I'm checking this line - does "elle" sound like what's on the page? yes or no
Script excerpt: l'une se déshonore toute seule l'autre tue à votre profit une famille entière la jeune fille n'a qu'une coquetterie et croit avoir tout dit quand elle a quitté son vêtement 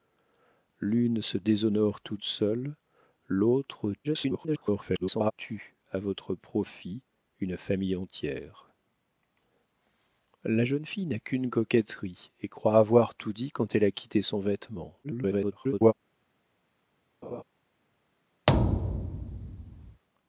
yes